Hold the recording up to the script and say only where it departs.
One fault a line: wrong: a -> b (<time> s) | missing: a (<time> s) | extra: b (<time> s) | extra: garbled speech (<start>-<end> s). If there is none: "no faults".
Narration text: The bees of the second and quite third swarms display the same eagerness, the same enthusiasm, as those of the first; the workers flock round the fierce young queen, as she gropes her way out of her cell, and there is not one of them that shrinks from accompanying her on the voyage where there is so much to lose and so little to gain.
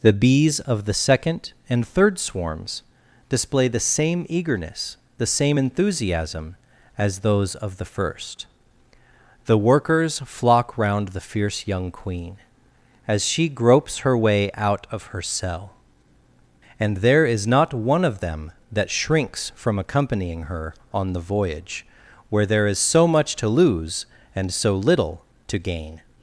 missing: quite (1.9 s)